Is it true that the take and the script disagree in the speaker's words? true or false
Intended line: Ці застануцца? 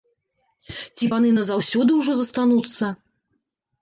true